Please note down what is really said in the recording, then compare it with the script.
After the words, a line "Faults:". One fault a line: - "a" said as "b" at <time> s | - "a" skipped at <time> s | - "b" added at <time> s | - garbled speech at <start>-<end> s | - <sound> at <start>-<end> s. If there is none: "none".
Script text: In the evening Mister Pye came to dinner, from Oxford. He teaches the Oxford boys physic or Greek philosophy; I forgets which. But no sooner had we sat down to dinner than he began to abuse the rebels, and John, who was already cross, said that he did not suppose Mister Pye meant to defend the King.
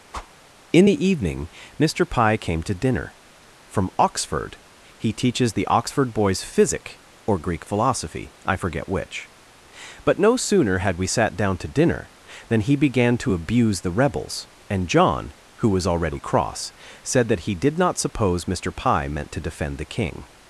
In the evening Mister Pye came to dinner, from Oxford. He teaches the Oxford boys physic or Greek philosophy; I forget which. But no sooner had we sat down to dinner than he began to abuse the rebels, and John, who was already cross, said that he did not suppose Mister Pye meant to defend the King.
Faults:
- whoosh at 0.1-0.3 s
- "forgets" said as "forget" at 8.5 s